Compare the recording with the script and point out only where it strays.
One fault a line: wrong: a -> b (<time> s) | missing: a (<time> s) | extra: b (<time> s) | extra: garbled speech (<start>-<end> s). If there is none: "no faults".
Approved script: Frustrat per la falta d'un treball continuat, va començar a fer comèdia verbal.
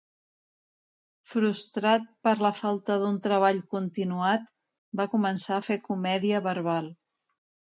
no faults